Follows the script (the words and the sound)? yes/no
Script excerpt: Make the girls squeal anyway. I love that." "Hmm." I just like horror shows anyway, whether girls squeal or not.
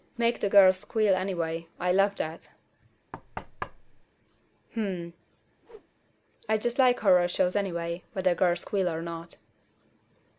no